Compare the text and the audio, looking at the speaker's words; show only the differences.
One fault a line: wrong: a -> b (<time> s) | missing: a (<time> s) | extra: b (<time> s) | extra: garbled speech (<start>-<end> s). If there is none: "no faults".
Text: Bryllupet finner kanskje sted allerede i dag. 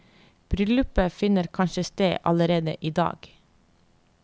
no faults